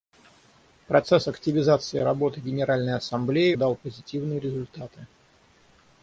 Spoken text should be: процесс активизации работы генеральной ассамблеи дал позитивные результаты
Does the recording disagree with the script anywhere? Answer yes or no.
no